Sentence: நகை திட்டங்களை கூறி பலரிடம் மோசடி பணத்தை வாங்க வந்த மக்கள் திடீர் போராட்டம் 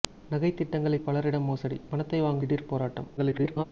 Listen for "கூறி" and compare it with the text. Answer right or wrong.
wrong